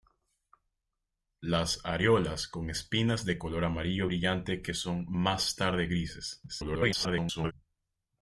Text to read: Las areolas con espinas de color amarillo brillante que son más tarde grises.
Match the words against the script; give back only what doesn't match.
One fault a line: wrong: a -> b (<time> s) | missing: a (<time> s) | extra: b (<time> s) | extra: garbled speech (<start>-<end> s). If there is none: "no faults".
extra: garbled speech (6.5-7.5 s)